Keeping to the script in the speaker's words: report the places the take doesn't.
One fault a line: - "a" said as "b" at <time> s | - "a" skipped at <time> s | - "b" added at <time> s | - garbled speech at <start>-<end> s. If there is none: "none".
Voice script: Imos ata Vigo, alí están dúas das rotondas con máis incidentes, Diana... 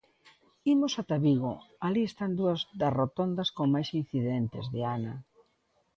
none